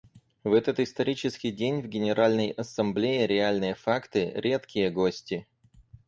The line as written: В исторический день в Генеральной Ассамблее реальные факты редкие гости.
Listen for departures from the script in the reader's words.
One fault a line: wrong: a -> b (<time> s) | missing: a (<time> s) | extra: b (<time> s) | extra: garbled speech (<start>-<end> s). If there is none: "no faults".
extra: этот (0.5 s)